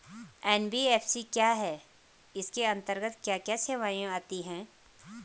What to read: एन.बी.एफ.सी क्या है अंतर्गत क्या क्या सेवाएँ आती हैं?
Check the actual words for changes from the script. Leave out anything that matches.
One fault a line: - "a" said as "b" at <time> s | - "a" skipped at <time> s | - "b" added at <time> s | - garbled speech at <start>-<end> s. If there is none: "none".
- "इसके" added at 2.3 s